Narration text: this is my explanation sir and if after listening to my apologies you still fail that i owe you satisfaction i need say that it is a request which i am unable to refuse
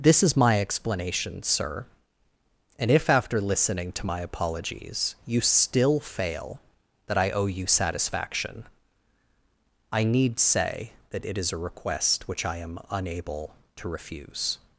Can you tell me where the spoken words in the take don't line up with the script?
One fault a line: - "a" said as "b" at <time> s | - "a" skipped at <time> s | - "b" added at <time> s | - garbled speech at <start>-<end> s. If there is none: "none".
none